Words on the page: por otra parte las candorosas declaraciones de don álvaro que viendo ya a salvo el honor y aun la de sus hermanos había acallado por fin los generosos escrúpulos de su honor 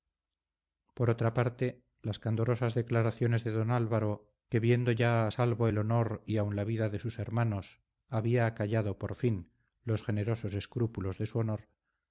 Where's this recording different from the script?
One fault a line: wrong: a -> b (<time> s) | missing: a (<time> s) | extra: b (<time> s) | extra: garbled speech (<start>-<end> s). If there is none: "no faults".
extra: vida (6.6 s)